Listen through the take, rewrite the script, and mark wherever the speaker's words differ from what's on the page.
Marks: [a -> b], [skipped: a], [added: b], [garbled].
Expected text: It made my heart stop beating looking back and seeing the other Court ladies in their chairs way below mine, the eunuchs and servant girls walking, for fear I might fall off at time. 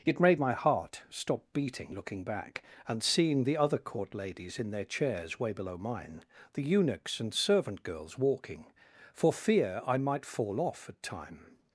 It made my heart stop beating looking back and seeing the other Court ladies in their chairs way below mine, the eunuchs and servant girls walking, for fear I might fall off at time.